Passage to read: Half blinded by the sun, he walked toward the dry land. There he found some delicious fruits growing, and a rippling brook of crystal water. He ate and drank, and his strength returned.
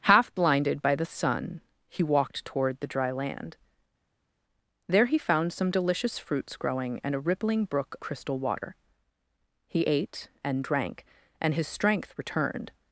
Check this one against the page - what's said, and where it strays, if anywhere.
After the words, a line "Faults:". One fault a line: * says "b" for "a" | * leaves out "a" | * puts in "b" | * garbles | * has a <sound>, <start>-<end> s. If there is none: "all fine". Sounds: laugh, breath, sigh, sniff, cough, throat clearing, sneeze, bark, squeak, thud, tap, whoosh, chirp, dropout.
Half blinded by the sun, he walked toward the dry land. There he found some delicious fruits growing, and a rippling brook crystal water. He ate and drank, and his strength returned.
Faults:
* leaves out "of"